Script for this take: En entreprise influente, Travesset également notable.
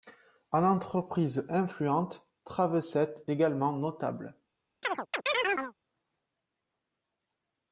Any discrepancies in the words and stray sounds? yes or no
yes